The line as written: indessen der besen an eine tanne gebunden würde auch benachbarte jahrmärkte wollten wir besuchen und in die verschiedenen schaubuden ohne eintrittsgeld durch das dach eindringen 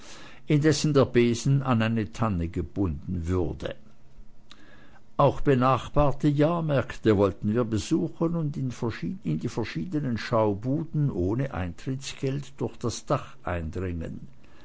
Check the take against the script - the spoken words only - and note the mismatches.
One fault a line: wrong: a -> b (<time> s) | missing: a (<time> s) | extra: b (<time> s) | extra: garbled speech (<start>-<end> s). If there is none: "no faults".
no faults